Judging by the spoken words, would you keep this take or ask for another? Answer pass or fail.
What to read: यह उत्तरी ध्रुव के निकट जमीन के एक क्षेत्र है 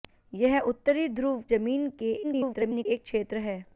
fail